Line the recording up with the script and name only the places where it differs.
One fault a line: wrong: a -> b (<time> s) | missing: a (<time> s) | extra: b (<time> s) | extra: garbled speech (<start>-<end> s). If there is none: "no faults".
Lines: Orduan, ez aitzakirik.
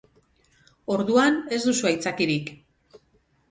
extra: duzu (1.7 s)